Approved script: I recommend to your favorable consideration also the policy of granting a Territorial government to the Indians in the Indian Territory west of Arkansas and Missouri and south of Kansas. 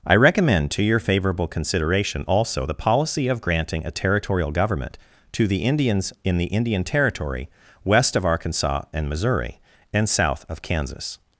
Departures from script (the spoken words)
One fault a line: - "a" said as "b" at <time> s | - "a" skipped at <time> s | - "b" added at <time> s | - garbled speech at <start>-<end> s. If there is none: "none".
none